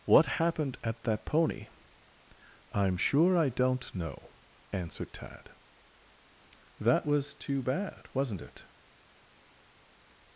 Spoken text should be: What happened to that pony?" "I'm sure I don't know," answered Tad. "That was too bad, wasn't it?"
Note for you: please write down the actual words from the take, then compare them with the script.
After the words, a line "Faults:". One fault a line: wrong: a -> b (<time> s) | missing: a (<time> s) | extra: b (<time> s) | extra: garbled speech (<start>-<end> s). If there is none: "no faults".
What happened at that pony?" "I'm sure I don't know," answered Tad. "That was too bad, wasn't it?"
Faults:
wrong: to -> at (0.8 s)